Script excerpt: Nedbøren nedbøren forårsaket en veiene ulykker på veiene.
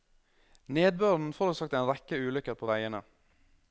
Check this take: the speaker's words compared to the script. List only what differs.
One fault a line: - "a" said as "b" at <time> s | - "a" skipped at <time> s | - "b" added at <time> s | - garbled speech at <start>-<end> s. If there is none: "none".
- "nedbøren" skipped at 1.3 s
- "veiene" said as "rekke" at 1.9 s